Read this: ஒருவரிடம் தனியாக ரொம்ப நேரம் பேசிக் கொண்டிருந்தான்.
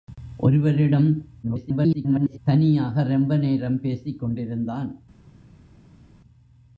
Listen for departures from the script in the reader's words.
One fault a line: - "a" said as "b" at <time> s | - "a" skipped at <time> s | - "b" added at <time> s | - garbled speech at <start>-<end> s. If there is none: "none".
- garbled speech at 1.4-2.4 s